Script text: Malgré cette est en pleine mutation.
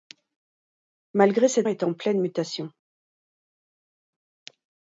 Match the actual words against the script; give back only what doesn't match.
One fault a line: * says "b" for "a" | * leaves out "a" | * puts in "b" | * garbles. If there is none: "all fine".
all fine